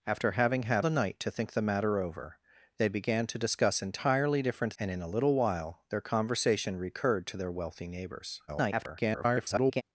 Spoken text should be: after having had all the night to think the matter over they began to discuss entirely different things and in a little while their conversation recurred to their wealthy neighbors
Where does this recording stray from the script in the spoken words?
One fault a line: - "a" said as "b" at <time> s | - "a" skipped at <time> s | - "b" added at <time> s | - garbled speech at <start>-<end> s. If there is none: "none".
- "all" skipped at 0.8 s
- "things" skipped at 4.7 s
- garbled speech at 8.5-9.8 s